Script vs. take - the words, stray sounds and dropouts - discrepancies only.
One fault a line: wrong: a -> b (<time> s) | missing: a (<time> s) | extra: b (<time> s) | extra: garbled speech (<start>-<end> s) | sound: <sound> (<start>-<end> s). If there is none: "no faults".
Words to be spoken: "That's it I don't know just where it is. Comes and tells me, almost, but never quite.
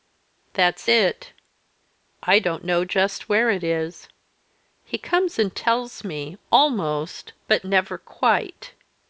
extra: He (4.8 s)